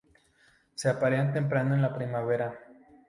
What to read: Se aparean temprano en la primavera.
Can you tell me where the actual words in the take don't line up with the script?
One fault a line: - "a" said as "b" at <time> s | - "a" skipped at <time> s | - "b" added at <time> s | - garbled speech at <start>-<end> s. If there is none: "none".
none